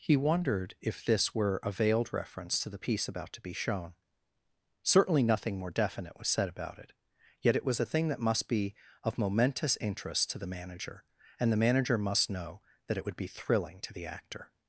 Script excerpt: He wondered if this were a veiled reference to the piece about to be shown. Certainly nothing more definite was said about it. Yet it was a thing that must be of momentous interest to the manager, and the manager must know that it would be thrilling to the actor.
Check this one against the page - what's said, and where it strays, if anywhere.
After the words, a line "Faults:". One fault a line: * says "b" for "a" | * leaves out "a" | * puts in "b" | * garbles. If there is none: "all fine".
He wondered if this were a veiled reference to the piece about to be shown. Certainly nothing more definite was said about it. Yet it was a thing that must be of momentous interest to the manager, and the manager must know that it would be thrilling to the actor.
Faults:
all fine